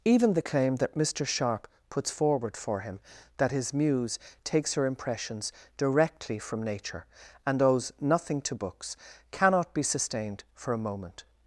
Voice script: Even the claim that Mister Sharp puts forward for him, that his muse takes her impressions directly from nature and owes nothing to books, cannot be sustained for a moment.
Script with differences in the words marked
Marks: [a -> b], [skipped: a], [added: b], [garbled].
Even the claim that Mister Sharp puts forward for him, that his muse takes her impressions directly from nature and owes nothing to books, cannot be sustained for a moment.